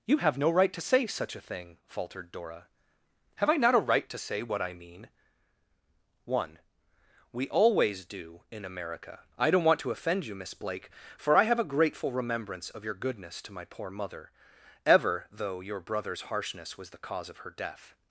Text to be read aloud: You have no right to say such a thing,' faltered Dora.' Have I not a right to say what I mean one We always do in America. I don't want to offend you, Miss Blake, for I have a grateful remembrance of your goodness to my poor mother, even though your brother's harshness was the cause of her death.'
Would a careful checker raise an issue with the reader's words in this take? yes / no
yes